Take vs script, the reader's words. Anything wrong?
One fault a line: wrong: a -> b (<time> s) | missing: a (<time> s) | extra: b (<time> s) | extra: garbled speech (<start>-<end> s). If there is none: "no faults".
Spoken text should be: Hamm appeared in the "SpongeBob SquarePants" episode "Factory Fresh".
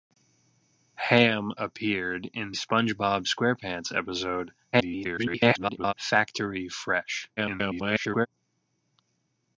missing: the (2.5 s)
extra: garbled speech (4.7-5.9 s)
extra: garbled speech (7.4-8.3 s)